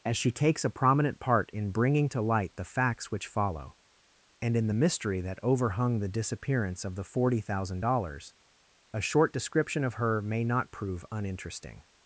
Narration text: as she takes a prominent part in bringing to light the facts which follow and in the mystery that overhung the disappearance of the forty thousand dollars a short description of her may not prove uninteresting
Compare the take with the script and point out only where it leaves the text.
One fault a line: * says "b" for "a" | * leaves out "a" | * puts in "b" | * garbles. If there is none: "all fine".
all fine